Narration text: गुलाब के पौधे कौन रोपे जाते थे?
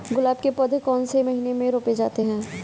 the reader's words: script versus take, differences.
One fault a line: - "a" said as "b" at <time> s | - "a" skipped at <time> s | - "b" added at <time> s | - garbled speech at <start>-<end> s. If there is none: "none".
- "से महीने में" added at 1.0 s
- "थे" said as "हैं" at 2.2 s